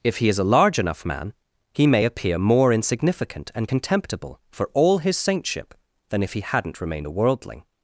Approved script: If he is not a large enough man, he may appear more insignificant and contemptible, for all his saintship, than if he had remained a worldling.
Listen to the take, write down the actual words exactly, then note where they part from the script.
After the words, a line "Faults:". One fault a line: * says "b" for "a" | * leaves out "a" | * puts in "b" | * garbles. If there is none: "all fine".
If he is a large enough man, he may appear more insignificant and contemptible, for all his saintship, than if he hadn't remained a worldling.
Faults:
* leaves out "not"
* says "hadn't" for "had"